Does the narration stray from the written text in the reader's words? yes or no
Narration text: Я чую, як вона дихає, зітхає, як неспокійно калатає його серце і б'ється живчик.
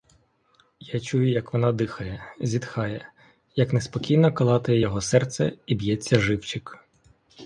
no